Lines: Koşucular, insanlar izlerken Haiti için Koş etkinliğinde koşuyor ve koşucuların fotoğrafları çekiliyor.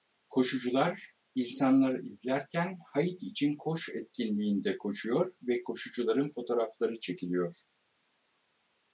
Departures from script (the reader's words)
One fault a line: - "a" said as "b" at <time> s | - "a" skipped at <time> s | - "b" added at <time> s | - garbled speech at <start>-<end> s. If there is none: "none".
none